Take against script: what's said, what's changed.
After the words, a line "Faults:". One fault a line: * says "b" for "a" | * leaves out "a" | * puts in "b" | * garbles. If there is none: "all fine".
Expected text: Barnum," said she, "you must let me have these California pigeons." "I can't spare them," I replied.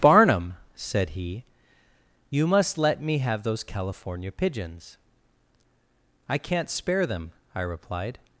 Barnum," said he, "you must let me have those California pigeons." "I can't spare them," I replied.
Faults:
* says "he" for "she"
* says "those" for "these"